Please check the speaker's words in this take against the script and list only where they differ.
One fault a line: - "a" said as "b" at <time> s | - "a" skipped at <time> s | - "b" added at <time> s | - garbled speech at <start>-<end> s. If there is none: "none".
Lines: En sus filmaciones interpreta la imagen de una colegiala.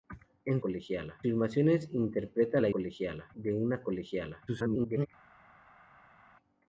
- "sus" said as "colegiala" at 0.6 s
- "imagen" said as "colegiala" at 2.7 s
- garbled speech at 4.5-5.1 s